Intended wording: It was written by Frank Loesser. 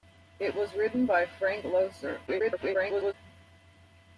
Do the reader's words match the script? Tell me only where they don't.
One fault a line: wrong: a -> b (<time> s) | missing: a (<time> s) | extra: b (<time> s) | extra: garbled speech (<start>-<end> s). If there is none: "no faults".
extra: garbled speech (2.3-3.1 s)